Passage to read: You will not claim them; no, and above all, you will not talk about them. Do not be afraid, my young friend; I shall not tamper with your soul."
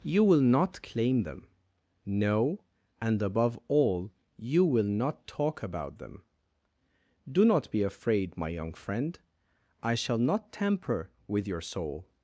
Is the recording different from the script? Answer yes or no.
no